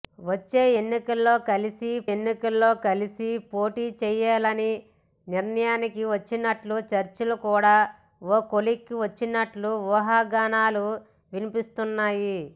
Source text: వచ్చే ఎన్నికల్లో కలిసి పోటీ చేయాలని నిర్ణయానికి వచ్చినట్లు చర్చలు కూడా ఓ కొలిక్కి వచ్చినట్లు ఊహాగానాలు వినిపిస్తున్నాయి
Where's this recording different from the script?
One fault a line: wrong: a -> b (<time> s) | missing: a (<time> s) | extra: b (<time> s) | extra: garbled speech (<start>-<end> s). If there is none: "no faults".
extra: ఎన్నికల్లో కలిసి (2.1 s)